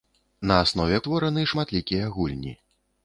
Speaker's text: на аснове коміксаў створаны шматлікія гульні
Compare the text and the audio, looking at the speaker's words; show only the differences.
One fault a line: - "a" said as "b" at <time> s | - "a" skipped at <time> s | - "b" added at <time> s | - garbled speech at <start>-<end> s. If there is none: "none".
- "коміксаў" skipped at 1.0 s